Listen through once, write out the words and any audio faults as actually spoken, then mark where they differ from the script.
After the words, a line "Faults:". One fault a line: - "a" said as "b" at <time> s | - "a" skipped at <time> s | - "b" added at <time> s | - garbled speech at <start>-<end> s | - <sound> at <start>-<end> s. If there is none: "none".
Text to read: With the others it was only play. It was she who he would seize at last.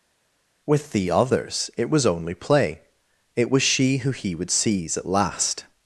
With the others it was only play. It was she who he would seize at last.
Faults:
none